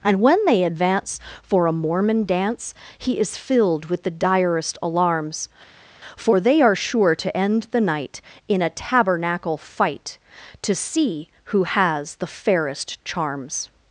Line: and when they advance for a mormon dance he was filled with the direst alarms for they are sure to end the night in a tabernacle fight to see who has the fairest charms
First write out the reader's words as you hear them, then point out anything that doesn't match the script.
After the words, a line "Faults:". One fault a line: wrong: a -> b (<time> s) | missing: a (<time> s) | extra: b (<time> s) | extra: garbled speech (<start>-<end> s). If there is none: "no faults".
and when they advance for a mormon dance he is filled with the direst alarms for they are sure to end the night in a tabernacle fight to see who has the fairest charms
Faults:
wrong: was -> is (3.2 s)